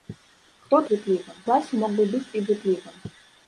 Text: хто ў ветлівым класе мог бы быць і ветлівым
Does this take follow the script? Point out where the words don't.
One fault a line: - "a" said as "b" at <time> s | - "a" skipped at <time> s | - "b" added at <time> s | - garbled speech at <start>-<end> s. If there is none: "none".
none